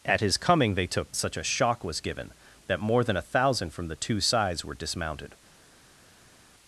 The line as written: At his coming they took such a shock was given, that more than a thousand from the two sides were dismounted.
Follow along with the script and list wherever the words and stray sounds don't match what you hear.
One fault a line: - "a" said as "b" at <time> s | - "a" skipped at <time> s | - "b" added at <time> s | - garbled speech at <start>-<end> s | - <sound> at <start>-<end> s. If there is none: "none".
none